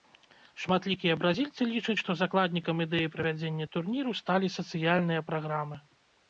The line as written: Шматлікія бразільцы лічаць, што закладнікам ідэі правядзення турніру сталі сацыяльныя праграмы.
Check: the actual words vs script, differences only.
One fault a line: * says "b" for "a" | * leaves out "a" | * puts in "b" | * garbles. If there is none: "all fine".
all fine